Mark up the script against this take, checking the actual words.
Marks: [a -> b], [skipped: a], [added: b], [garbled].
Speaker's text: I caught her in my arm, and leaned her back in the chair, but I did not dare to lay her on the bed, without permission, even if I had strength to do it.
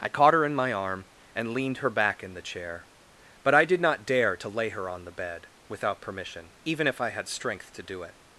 I caught her in my arm, and leaned her back in the chair, but I did not dare to lay her on the bed, without permission, even if I had strength to do it.